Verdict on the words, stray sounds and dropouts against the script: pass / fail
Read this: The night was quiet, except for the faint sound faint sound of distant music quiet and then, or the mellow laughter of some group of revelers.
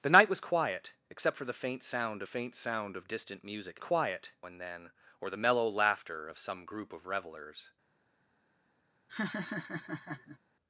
fail